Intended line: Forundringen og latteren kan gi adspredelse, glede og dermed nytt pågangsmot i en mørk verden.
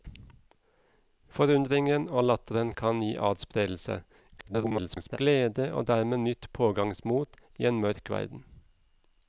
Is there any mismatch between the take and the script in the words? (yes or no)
yes